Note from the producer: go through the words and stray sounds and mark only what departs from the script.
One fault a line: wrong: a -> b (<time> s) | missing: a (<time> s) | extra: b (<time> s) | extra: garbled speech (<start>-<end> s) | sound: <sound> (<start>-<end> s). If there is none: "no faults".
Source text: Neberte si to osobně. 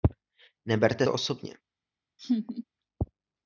missing: si (1.1 s)
sound: laugh (2.2-2.6 s)